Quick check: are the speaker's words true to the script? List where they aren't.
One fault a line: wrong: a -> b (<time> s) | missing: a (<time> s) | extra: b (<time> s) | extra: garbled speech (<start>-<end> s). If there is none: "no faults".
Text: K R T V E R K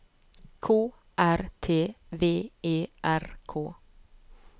no faults